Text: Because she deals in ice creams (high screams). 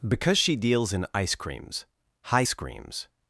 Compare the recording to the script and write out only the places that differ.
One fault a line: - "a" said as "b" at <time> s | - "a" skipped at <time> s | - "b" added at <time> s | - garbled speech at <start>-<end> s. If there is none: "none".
none